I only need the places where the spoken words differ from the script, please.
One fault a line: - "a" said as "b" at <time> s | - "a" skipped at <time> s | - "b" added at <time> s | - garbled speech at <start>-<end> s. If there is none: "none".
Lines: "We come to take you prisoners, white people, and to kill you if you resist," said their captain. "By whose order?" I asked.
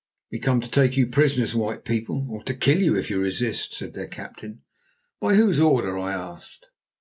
- "and" said as "or" at 2.3 s